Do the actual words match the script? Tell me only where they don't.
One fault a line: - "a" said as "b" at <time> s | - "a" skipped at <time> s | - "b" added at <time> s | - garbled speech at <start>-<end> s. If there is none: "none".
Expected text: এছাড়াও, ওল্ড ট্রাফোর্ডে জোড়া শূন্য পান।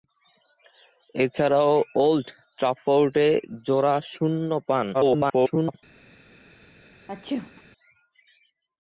- garbled speech at 4.9-5.8 s